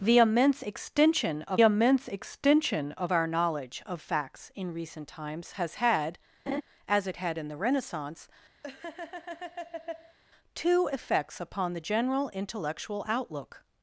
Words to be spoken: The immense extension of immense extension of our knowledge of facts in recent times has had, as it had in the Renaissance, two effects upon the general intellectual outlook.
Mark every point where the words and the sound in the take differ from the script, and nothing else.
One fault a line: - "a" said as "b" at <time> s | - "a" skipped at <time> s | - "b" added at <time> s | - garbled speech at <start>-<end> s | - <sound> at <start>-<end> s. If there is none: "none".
- laugh at 6.5-6.6 s
- laugh at 8.6-10.2 s